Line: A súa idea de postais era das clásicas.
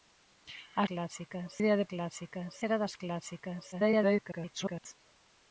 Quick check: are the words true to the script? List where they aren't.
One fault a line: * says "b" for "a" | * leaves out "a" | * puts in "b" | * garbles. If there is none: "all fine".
* says "clásicas" for "súa"
* says "clásicas" for "postais"
* garbles